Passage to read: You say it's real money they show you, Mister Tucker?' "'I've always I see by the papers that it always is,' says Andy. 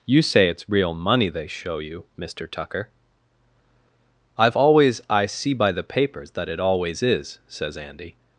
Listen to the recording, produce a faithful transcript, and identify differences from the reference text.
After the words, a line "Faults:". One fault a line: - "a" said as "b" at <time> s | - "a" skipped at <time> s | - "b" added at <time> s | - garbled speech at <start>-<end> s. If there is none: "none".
You say it's real money they show you, Mister Tucker?' "'I've always I see by the papers that it always is,' says Andy.
Faults:
none